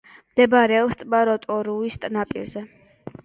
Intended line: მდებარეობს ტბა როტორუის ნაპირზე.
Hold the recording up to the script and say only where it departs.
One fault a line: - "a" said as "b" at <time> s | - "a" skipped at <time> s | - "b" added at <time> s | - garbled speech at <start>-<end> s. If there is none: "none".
none